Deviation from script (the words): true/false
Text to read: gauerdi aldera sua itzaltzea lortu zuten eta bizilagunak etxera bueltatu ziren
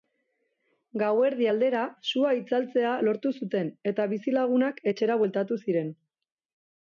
false